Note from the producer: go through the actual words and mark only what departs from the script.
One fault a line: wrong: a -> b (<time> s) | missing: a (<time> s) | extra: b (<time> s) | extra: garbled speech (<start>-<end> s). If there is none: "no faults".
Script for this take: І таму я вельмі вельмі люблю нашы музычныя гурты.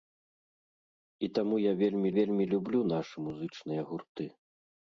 no faults